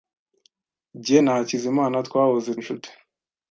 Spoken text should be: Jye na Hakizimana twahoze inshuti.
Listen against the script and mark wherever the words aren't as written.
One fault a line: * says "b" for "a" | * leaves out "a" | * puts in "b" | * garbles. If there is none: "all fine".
all fine